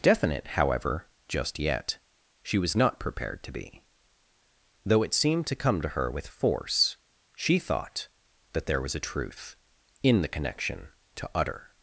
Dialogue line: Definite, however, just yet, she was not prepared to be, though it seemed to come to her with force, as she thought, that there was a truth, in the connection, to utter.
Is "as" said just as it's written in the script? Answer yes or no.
no